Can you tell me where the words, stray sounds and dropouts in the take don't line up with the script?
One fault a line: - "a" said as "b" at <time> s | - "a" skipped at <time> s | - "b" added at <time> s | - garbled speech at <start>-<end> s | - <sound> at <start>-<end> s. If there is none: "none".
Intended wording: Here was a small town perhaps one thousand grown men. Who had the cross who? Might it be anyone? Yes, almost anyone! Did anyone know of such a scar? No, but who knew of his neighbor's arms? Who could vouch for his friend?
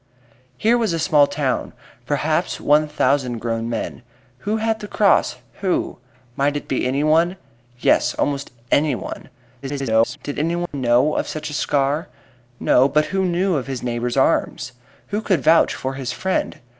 - garbled speech at 9.6-10.2 s
- dropout at 10.7-10.7 s